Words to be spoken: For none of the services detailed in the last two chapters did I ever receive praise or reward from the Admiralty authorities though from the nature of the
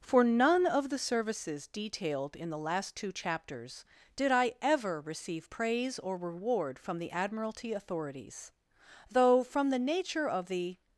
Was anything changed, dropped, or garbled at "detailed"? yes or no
no